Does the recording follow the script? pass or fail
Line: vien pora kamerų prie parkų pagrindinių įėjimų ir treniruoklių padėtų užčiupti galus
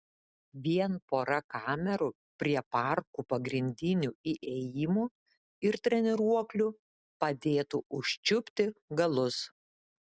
pass